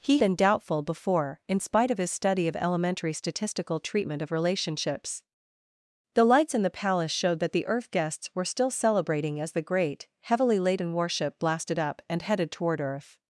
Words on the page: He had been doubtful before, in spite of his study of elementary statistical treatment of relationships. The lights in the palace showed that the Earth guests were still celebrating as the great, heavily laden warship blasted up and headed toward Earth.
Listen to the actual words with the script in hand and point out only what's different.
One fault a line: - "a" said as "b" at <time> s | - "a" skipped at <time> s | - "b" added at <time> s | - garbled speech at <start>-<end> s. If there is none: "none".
- "had" skipped at 0.2 s